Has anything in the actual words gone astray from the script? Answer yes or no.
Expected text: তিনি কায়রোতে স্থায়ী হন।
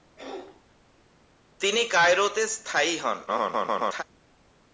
yes